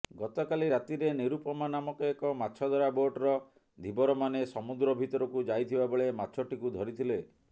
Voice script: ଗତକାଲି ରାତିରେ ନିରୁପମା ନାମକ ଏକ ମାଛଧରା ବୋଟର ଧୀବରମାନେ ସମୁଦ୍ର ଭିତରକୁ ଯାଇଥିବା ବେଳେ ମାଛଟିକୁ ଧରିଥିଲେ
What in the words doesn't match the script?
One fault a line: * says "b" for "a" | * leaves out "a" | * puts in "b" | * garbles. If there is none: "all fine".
all fine